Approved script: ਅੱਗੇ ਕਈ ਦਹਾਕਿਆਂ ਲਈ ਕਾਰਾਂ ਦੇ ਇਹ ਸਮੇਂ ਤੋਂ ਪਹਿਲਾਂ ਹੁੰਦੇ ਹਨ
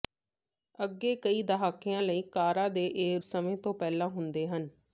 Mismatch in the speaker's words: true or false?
false